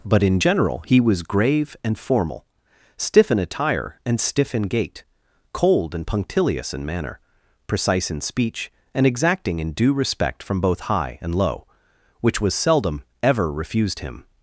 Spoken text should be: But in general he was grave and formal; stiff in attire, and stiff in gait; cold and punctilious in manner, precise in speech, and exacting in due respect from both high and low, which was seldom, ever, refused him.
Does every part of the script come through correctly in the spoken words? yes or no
yes